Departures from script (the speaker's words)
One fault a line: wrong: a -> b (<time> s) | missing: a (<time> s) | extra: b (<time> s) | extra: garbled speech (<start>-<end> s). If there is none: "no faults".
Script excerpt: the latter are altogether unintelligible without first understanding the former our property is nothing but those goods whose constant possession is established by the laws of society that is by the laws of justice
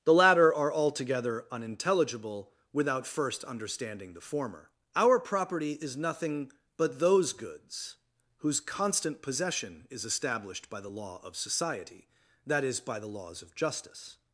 wrong: laws -> law (10.9 s)